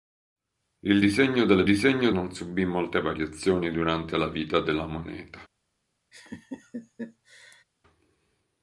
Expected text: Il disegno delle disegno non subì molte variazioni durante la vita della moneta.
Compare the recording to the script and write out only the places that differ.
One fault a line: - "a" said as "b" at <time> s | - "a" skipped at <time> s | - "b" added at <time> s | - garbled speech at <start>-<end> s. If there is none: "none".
none